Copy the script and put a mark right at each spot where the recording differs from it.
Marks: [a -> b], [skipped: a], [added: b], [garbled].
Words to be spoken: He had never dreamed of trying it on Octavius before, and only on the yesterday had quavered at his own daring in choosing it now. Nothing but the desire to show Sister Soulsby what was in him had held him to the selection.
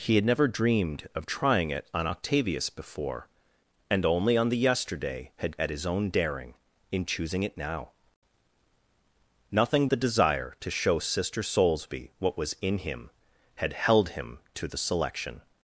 He had never dreamed of trying it on Octavius before, and only on the yesterday had [skipped: quavered] at his own daring in choosing it now. Nothing [skipped: but] the desire to show Sister Soulsby what was in him had held him to the selection.